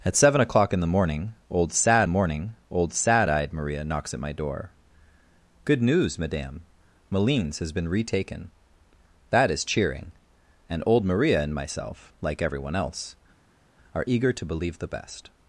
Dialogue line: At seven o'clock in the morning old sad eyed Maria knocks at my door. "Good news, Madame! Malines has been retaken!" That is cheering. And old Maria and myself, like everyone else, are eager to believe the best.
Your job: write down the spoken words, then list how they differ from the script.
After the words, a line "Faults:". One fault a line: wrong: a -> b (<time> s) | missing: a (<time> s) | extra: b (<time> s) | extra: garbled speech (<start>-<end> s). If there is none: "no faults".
At seven o'clock in the morning old sad morning old sad eyed Maria knocks at my door. "Good news, Madame! Malines has been retaken!" That is cheering. And old Maria and myself, like everyone else, are eager to believe the best.
Faults:
extra: morning old sad (2.1 s)